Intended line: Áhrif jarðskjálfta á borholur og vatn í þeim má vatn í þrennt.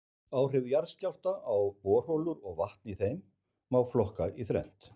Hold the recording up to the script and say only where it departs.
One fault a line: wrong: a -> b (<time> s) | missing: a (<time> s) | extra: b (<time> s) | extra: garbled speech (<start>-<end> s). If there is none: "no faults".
wrong: vatn -> flokka (3.9 s)